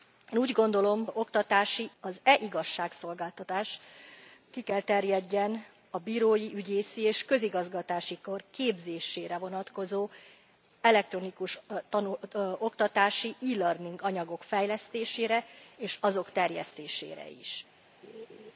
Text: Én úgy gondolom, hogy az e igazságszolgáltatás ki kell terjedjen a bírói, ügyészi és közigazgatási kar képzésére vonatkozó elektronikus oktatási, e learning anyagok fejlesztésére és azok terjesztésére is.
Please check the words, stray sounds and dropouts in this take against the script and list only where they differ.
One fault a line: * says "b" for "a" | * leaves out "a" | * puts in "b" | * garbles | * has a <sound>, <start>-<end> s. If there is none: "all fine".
* says "oktatási" for "hogy"
* has a laugh, 18.0-18.5 s